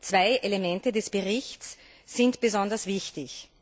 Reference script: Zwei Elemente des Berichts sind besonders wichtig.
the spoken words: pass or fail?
pass